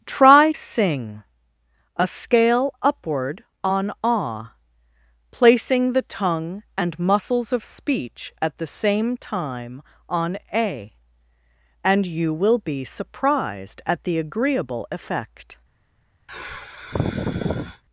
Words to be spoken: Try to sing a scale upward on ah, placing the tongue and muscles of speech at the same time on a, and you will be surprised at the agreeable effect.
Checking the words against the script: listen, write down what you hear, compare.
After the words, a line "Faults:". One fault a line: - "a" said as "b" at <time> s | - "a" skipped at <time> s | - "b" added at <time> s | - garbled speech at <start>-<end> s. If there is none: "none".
Try sing a scale upward on ah, placing the tongue and muscles of speech at the same time on a, and you will be surprised at the agreeable effect.
Faults:
- "to" skipped at 0.5 s